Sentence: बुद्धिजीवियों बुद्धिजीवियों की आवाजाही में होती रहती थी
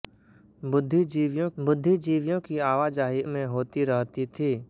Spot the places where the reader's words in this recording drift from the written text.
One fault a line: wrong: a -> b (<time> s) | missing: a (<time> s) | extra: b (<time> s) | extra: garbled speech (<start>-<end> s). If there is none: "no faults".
no faults